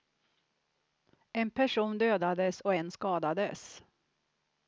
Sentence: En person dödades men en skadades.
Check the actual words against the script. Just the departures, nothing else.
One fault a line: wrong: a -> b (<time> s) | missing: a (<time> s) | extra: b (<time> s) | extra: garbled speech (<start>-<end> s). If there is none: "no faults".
wrong: men -> och (2.6 s)